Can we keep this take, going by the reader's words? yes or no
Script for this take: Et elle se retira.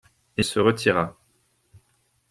no